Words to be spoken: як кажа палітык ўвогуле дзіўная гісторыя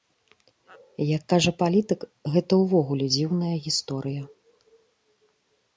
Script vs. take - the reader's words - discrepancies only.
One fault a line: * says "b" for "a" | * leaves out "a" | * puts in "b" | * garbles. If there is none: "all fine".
* puts in "гэта"